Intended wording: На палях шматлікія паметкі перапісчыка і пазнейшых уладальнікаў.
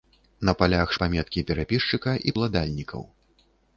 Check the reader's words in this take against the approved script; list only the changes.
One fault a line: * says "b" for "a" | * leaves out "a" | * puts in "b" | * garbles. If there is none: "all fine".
* leaves out "шматлікія"
* leaves out "пазнейшых"